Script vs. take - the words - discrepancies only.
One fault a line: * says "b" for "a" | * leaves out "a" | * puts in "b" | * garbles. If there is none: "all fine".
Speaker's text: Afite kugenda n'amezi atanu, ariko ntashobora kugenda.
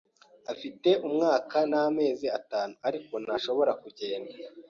* says "umwaka" for "kugenda"